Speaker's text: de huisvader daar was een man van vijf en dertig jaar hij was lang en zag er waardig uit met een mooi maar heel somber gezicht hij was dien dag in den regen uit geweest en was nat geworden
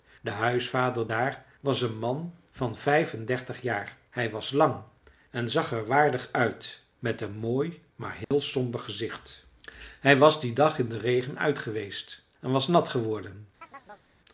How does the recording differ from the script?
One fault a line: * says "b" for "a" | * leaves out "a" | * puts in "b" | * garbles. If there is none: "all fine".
all fine